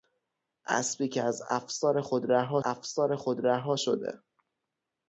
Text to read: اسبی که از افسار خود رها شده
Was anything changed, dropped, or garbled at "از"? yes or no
no